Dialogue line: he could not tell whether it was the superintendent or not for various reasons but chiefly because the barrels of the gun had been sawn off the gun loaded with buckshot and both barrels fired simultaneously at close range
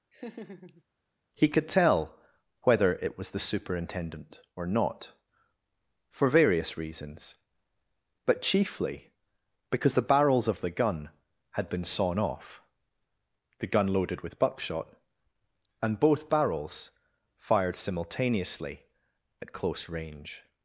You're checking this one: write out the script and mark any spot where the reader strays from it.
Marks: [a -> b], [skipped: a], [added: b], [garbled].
he could [skipped: not] tell whether it was the superintendent or not for various reasons but chiefly because the barrels of the gun had been sawn off the gun loaded with buckshot and both barrels fired simultaneously at close range